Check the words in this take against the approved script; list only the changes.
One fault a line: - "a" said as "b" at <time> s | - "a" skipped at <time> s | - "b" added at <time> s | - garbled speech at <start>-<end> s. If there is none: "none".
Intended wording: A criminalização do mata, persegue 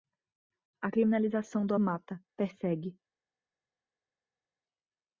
none